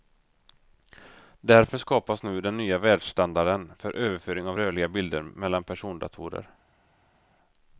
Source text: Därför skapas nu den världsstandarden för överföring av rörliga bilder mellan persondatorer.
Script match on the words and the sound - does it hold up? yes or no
no